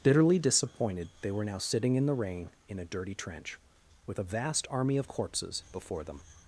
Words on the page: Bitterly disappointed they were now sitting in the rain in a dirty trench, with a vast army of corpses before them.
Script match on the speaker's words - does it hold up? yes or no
yes